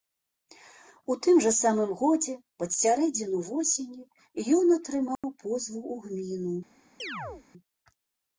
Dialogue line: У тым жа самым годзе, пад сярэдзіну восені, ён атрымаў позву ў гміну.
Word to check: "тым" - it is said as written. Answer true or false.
true